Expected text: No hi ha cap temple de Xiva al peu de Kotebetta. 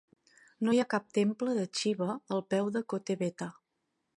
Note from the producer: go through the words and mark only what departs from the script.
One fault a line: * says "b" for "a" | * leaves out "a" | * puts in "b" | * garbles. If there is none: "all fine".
all fine